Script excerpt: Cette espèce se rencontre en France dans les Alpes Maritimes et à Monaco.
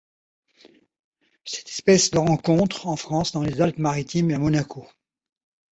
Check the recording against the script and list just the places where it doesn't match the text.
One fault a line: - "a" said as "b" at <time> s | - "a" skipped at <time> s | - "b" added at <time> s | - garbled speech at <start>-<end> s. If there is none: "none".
none